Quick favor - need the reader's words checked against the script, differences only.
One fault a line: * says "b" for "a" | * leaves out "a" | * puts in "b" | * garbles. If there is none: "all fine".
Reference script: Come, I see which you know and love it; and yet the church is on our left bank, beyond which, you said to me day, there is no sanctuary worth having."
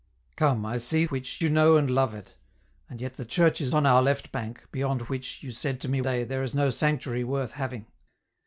all fine